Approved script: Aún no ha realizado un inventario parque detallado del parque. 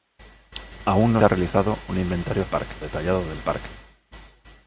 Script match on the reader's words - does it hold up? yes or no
yes